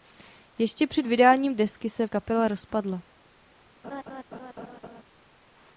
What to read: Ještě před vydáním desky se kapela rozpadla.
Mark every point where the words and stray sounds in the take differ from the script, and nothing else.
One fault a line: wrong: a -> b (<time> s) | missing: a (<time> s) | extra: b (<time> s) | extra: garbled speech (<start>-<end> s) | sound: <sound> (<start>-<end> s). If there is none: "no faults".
sound: laugh (3.8-5.0 s)